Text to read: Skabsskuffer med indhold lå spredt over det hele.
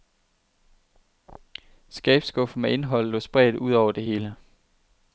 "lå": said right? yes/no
yes